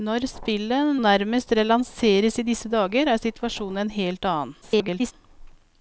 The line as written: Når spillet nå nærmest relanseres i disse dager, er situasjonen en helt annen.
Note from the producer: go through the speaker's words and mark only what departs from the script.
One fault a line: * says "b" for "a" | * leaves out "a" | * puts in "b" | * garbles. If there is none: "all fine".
* leaves out "nå"
* garbles